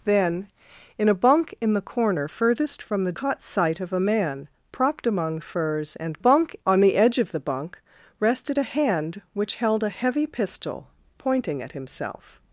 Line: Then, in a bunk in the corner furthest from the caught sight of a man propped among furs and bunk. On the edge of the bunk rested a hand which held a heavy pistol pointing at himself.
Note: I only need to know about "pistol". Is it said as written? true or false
true